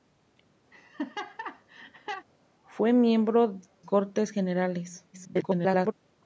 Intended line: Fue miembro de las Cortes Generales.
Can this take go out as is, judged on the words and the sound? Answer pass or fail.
fail